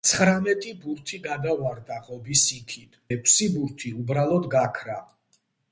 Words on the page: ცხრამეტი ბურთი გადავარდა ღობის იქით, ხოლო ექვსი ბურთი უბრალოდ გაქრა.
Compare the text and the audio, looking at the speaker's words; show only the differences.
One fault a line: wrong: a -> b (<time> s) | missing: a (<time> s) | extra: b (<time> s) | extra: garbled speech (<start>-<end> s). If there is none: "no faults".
missing: ხოლო (3.0 s)